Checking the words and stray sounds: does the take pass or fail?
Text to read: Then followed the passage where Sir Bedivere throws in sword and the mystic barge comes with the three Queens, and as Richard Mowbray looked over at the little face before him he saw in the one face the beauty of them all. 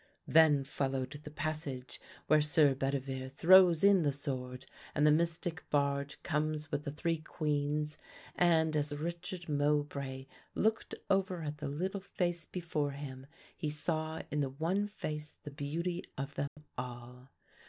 fail